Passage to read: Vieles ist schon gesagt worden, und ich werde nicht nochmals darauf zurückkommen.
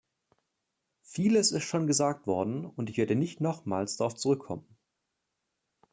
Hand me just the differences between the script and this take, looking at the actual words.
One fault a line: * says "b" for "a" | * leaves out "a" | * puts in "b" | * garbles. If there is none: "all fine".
all fine